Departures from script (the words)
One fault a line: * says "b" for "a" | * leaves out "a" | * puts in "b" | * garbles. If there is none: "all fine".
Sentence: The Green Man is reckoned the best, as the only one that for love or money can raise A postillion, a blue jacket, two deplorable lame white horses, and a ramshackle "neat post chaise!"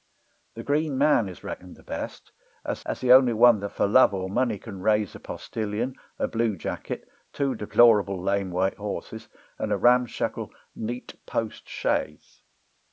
* puts in "as"